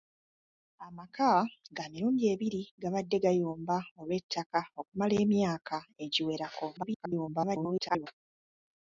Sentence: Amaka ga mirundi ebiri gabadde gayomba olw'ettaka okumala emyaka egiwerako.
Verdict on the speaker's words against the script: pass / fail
fail